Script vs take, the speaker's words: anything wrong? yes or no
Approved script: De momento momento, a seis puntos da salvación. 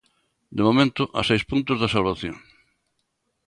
yes